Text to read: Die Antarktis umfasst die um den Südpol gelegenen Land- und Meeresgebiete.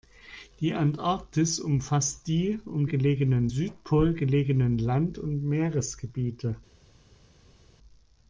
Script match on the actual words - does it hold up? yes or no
no